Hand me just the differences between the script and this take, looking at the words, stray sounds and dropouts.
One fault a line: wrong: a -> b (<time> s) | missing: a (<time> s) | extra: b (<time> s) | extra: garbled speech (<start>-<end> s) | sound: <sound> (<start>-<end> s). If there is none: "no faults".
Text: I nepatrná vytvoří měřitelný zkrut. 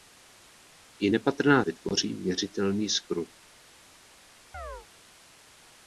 sound: chirp (4.5-4.9 s)